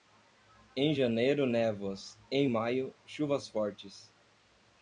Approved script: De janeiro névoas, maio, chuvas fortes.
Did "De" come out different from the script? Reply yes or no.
yes